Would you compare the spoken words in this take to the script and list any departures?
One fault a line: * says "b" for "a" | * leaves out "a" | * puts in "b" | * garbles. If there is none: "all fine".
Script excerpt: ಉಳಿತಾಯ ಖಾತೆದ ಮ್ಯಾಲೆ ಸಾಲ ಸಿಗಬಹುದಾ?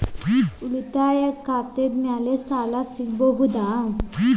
all fine